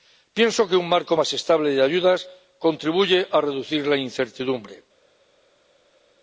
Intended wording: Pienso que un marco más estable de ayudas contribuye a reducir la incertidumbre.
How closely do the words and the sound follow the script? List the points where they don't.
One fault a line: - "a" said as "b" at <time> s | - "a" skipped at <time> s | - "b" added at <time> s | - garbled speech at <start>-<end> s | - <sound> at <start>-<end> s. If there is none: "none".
none